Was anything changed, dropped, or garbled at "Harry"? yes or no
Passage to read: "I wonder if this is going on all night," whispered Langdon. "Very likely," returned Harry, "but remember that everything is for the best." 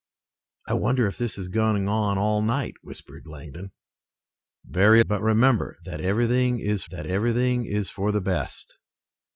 yes